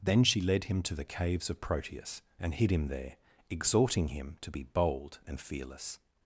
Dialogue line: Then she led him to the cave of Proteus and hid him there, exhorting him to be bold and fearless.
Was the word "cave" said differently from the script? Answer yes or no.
yes